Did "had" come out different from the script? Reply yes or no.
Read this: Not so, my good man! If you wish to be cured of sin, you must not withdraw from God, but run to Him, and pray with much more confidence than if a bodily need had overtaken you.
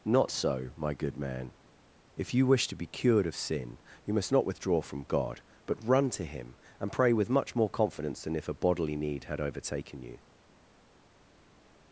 no